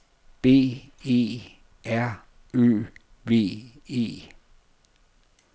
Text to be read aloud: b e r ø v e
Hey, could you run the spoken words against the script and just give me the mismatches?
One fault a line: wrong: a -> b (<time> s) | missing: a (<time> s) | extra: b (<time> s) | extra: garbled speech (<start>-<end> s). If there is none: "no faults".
no faults